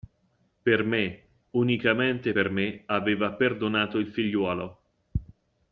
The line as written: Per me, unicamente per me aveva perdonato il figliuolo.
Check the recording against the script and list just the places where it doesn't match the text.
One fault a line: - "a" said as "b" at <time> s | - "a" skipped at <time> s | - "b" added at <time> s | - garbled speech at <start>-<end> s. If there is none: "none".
none